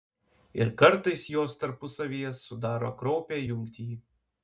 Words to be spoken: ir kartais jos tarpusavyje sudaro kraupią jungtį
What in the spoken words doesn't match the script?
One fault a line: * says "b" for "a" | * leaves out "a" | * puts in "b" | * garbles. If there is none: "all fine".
all fine